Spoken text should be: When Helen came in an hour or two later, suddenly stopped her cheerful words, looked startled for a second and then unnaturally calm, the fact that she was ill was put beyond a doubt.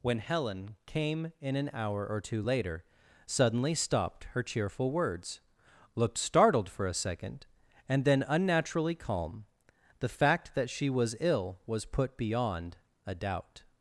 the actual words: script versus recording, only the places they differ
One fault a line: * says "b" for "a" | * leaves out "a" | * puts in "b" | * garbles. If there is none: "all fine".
all fine